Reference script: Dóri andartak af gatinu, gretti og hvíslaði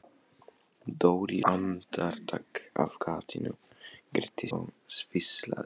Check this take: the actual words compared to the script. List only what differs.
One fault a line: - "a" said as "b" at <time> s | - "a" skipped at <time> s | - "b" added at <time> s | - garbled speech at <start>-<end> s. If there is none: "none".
none